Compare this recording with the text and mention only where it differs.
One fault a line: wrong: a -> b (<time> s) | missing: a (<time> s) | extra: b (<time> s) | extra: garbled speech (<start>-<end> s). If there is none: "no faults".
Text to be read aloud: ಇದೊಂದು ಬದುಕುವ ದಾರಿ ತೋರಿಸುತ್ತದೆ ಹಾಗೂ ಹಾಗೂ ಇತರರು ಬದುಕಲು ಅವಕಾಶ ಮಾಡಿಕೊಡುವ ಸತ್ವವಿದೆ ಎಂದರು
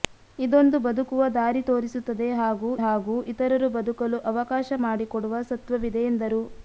no faults